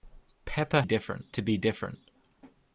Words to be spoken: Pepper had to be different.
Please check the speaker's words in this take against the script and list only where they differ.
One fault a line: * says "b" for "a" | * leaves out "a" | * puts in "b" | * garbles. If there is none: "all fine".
* says "different" for "had"